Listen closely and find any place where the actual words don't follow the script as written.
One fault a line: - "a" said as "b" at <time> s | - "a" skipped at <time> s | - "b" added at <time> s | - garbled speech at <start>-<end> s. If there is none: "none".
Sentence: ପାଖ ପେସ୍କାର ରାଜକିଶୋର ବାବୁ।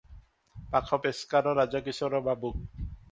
none